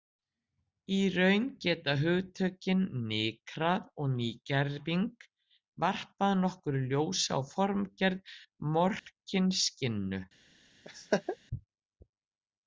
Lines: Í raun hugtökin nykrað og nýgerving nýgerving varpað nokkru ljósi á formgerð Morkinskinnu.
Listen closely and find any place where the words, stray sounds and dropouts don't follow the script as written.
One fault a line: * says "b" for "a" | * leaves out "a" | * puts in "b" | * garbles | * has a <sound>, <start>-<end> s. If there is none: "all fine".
* puts in "geta"
* leaves out "nýgerving"
* has a dropout, 9.0-9.1 s
* has a laugh, 10.8-11.4 s